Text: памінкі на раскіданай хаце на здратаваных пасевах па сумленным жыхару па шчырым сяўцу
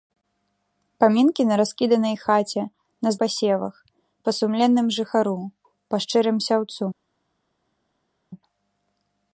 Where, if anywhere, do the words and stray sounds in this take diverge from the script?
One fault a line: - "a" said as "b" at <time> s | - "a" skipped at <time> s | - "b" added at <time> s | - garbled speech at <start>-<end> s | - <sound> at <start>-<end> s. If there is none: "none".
- "здратаваных" skipped at 3.1 s